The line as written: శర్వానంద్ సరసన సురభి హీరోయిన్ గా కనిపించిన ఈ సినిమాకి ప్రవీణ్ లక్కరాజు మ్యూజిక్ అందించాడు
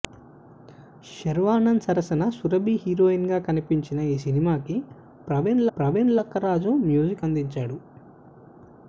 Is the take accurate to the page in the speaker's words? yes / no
no